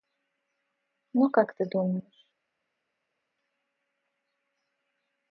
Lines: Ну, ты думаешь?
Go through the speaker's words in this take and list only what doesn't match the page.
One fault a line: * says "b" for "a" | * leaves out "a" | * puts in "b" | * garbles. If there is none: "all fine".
* puts in "как"